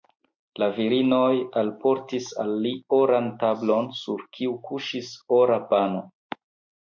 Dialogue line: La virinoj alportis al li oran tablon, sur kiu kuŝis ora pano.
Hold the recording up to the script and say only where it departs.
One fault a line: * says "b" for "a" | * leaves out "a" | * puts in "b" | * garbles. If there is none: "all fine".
all fine